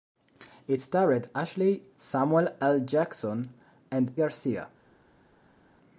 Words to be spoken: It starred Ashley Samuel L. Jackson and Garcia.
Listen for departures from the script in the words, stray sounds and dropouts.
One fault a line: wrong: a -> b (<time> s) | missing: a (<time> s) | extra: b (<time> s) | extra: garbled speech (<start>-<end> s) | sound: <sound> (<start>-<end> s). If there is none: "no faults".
no faults